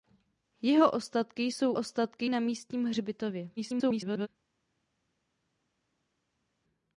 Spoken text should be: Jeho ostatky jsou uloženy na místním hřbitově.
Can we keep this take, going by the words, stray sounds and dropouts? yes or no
no